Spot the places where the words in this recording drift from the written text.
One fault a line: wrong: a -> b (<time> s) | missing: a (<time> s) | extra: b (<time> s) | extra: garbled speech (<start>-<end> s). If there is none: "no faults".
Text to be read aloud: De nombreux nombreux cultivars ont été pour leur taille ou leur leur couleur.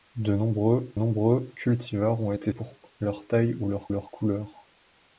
no faults